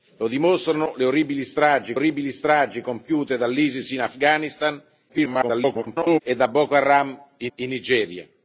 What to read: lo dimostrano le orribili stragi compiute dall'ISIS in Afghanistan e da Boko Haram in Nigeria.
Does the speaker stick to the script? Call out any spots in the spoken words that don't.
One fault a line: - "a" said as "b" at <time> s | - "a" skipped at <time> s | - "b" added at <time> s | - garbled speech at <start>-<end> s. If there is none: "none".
- "orribili stragi" added at 1.9 s
- garbled speech at 5.1-6.2 s
- "in" added at 7.6 s